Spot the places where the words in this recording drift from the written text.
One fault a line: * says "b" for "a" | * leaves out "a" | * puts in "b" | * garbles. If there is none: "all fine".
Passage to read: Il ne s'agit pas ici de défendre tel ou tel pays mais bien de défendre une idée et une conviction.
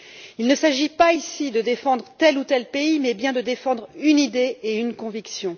all fine